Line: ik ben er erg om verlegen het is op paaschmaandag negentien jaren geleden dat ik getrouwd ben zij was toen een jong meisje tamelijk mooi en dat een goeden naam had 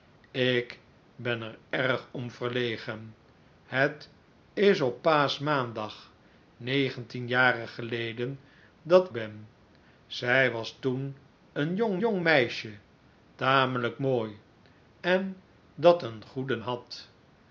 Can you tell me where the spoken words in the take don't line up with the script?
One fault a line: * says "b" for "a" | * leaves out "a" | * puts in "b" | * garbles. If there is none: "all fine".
* leaves out "ik getrouwd"
* puts in "jong"
* leaves out "naam"